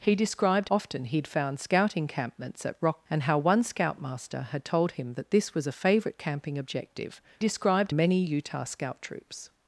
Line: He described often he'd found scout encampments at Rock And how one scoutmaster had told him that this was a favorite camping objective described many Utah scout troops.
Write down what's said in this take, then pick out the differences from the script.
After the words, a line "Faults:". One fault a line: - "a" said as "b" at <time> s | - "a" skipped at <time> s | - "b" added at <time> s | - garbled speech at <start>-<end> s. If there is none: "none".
He described often he'd found scout encampments at Rock And how one scoutmaster had told him that this was a favorite camping objective described many Utah scout troops.
Faults:
none